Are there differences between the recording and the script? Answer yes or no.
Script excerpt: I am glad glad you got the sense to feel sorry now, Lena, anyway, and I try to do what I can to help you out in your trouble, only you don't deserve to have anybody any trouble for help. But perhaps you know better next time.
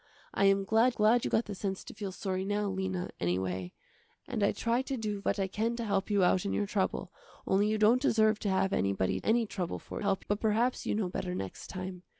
no